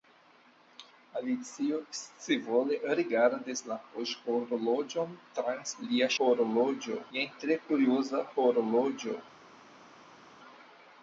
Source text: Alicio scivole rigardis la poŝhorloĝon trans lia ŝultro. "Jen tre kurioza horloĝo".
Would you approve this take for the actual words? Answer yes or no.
no